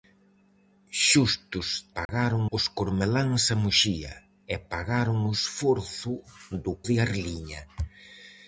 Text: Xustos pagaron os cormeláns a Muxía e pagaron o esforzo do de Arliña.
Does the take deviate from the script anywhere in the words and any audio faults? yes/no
yes